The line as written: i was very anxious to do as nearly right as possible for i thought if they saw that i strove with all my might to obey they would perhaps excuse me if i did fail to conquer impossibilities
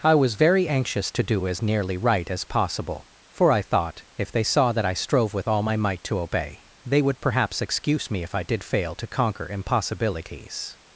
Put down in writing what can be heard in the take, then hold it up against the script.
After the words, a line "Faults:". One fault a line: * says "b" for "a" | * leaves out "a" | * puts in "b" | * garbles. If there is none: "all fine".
i was very anxious to do as nearly right as possible for i thought if they saw that i strove with all my might to obey they would perhaps excuse me if i did fail to conquer impossibilities
Faults:
all fine